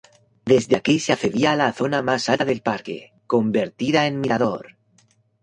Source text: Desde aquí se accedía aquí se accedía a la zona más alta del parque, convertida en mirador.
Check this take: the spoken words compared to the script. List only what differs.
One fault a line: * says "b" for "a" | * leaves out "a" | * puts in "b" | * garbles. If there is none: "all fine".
* leaves out "aquí se accedía"